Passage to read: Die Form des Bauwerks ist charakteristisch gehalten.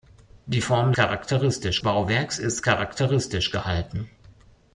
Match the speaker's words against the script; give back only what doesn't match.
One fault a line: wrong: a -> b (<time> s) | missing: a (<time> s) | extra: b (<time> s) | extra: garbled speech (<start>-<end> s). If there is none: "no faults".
wrong: des -> charakteristisch (0.9 s)